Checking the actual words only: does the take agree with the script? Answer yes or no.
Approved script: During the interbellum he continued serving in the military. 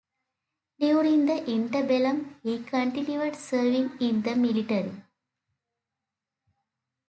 yes